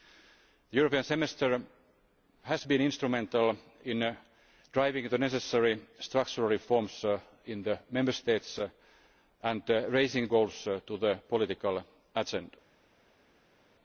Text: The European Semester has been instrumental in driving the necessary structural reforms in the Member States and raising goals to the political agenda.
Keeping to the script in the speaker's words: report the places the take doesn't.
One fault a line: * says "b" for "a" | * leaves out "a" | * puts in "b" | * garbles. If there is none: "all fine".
all fine